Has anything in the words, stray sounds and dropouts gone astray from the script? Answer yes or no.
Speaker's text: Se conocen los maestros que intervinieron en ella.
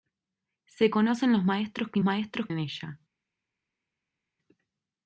yes